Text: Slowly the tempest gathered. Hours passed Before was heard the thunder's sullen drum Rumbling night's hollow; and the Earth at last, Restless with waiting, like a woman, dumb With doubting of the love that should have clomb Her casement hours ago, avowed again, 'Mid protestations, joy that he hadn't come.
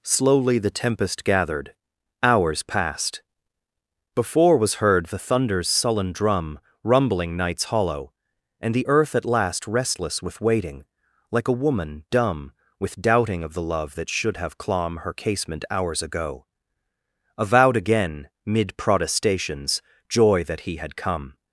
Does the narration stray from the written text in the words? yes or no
yes